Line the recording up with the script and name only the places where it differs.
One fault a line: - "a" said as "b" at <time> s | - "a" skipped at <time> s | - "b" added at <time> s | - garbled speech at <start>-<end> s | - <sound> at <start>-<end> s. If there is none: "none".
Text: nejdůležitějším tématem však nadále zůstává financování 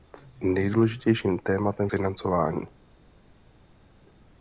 - "však nadále zůstává" skipped at 1.9 s